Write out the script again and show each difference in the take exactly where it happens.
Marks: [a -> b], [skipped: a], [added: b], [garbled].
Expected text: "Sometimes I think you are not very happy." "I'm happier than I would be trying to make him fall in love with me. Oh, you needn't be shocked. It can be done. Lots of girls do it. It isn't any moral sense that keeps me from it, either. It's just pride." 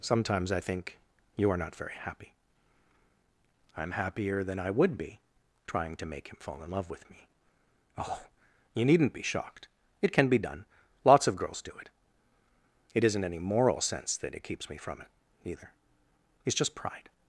"Sometimes I think you are not very happy." "I'm happier than I would be trying to make him fall in love with me. Oh, you needn't be shocked. It can be done. Lots of girls do it. It isn't any moral sense that [added: it] keeps me from it, either. It's just pride."